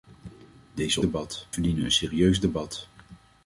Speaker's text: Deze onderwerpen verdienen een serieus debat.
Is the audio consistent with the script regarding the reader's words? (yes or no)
no